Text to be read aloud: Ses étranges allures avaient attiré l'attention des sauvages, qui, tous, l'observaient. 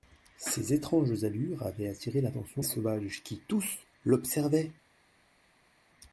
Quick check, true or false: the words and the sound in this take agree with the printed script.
false